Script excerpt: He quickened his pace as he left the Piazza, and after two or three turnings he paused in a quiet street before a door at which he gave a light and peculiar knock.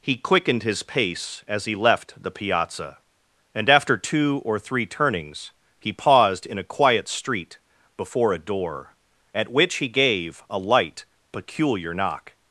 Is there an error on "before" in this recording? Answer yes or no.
no